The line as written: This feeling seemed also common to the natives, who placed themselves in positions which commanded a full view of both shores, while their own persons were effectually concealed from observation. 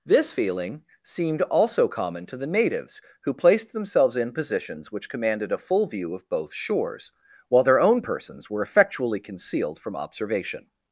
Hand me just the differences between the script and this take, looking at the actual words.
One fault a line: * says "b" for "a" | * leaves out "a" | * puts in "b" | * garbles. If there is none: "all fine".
all fine